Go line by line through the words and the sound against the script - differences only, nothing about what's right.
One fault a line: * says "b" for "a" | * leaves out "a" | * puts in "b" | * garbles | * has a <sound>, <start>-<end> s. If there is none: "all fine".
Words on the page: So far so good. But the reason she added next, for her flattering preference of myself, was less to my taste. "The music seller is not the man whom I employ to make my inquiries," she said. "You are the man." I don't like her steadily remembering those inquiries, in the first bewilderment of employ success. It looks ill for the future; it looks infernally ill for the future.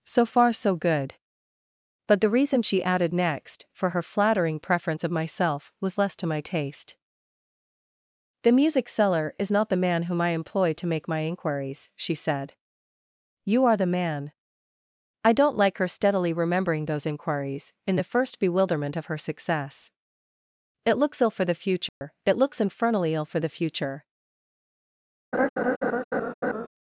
* says "her" for "employ"
* has a dropout, 21.9-22.0 s
* has a laugh, 25.3-26.7 s